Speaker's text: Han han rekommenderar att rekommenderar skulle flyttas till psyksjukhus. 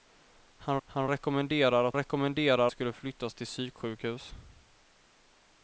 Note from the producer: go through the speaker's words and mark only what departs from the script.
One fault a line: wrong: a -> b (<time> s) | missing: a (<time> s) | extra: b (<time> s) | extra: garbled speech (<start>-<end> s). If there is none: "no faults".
no faults